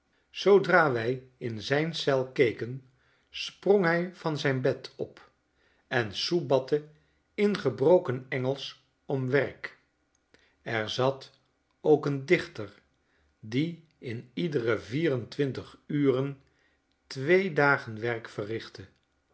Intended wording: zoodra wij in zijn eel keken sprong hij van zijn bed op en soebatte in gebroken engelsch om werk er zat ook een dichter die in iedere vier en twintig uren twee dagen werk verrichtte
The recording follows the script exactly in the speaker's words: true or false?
true